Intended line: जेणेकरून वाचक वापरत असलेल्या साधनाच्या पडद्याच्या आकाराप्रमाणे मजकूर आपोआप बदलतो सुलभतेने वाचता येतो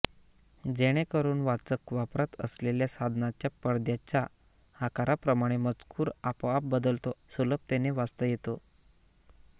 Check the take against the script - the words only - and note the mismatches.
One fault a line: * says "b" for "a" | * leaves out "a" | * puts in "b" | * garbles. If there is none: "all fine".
all fine